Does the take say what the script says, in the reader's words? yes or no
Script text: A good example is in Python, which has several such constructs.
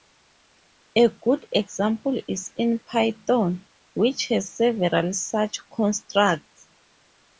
yes